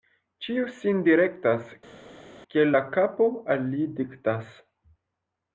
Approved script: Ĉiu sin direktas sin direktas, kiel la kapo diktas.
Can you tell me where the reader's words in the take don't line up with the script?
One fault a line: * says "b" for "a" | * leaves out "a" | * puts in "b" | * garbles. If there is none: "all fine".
* leaves out "sin direktas"
* puts in "al li"